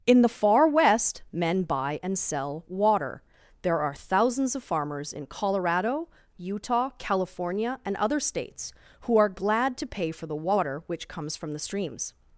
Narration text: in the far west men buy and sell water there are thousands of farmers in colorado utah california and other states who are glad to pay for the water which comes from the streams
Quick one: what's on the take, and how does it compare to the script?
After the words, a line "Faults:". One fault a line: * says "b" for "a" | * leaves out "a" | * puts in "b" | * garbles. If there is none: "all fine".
in the far west men buy and sell water there are thousands of farmers in colorado utah california and other states who are glad to pay for the water which comes from the streams
Faults:
all fine